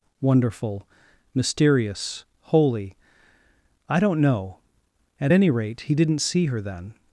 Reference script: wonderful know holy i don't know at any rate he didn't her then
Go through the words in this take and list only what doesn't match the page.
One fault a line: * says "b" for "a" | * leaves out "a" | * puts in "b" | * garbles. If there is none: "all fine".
* says "mysterious" for "know"
* puts in "see"